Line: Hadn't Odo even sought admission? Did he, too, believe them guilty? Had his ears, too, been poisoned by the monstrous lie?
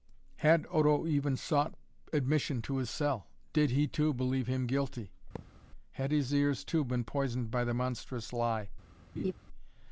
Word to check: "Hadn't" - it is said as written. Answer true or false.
false